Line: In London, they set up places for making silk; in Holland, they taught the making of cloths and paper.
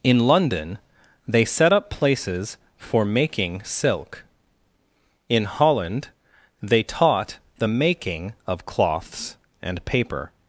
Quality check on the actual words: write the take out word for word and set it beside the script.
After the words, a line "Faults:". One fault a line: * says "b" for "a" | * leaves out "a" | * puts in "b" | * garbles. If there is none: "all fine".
In London, they set up places for making silk; in Holland, they taught the making of cloths and paper.
Faults:
all fine